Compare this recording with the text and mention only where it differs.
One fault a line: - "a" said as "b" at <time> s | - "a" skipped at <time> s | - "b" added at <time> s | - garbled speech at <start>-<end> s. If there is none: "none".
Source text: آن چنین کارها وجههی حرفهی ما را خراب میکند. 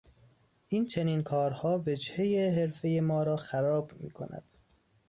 - "آن" said as "این" at 0.7 s